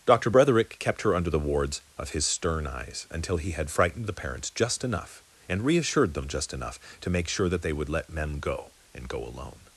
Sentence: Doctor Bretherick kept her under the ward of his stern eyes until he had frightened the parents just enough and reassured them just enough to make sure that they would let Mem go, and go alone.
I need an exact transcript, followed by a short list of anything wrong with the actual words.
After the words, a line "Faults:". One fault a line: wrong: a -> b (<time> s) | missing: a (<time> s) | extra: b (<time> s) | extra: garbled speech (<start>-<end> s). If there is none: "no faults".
Doctor Bretherick kept her under the wards of his stern eyes until he had frightened the parents just enough and reassured them just enough to make sure that they would let Mem go, and go alone.
Faults:
wrong: ward -> wards (1.4 s)